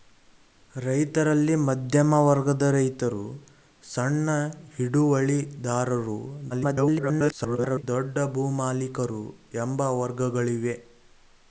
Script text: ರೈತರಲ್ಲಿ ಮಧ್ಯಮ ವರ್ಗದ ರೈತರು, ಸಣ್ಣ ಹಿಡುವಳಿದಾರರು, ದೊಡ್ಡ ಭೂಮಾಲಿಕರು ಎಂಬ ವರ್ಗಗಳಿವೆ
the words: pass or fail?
fail